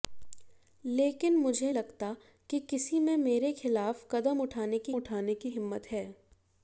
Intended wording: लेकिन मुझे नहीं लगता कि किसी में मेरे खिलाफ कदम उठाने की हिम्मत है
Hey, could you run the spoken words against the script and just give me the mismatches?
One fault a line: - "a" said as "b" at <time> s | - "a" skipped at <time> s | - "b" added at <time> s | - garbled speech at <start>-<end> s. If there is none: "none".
- "नहीं" skipped at 1.7 s
- "उठाने की" added at 4.9 s